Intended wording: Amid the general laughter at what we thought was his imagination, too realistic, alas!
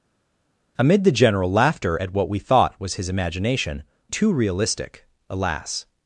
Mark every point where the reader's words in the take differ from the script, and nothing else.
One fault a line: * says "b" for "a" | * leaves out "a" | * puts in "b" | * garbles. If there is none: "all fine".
all fine